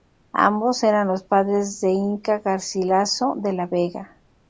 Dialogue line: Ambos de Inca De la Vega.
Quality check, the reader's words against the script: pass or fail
fail